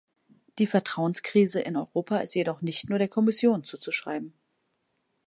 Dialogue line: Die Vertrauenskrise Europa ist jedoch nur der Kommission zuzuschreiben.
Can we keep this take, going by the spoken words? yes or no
no